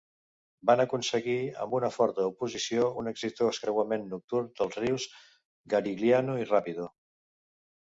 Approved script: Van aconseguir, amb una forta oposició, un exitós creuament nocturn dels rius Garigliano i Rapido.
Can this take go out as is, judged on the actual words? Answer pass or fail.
pass